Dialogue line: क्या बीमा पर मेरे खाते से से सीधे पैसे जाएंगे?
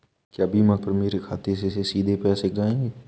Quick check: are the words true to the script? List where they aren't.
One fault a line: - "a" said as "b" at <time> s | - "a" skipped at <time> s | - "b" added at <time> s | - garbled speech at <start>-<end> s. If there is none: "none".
none